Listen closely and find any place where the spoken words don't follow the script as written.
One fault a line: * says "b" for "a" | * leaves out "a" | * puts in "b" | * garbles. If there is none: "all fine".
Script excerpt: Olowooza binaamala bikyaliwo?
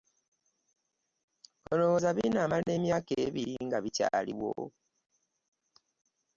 * puts in "emyaka ebiri nga"